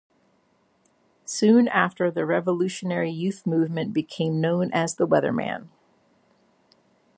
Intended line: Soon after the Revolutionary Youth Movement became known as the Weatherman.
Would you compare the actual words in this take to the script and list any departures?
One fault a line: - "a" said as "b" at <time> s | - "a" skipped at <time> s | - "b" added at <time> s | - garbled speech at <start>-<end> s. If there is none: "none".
none